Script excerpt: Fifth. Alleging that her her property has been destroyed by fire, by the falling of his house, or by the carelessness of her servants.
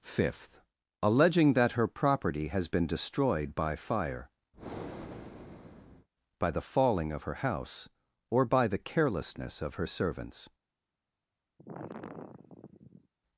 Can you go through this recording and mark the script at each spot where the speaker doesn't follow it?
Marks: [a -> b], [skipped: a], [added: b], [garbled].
Fifth. Alleging that her [skipped: her] property has been destroyed by fire, by the falling of [his -> her] house, or by the carelessness of her servants.